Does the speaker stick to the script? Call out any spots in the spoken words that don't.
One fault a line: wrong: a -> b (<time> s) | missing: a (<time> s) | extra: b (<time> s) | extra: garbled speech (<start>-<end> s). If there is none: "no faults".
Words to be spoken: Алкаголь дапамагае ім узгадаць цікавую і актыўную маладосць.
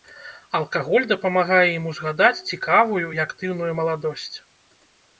no faults